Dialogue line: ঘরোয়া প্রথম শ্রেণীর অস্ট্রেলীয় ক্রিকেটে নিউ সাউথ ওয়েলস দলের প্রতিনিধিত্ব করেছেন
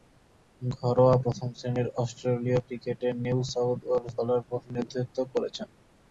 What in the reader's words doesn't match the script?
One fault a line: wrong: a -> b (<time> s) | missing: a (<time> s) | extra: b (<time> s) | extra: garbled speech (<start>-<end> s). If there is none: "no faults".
no faults